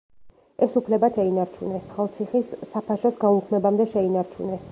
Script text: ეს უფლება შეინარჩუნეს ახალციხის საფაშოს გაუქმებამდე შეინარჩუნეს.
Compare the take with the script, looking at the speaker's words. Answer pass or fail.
pass